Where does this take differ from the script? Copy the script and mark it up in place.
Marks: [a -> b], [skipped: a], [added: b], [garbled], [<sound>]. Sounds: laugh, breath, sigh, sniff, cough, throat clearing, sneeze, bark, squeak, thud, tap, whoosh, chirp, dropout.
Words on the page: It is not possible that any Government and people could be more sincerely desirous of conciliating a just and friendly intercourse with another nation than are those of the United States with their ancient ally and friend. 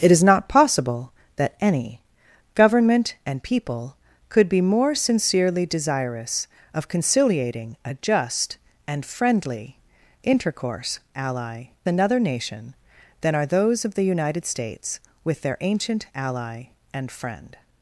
It is not possible that any Government and people could be more sincerely desirous of conciliating a just and friendly intercourse [with -> ally] another nation than are those of the United States with their ancient ally and friend.